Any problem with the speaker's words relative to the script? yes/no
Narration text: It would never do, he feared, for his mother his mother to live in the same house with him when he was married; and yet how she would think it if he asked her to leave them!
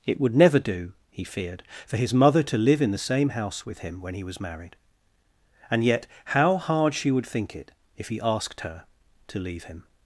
yes